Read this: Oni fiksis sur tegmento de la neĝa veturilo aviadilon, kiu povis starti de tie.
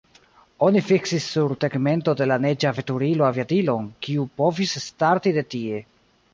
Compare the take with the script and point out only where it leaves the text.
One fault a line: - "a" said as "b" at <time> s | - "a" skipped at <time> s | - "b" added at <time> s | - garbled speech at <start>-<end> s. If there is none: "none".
none